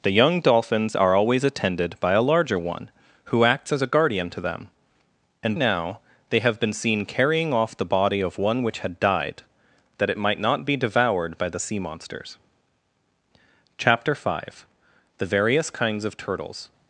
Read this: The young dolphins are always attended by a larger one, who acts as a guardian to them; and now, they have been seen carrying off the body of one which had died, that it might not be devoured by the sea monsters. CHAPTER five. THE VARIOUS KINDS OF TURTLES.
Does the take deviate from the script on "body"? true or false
false